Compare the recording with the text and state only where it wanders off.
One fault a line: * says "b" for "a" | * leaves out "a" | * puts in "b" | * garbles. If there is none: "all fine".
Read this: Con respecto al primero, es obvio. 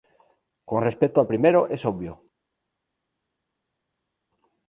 all fine